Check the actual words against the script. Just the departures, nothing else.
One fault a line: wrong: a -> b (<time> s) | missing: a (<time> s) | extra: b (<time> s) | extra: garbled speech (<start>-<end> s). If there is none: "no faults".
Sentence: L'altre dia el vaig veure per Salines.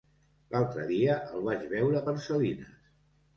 no faults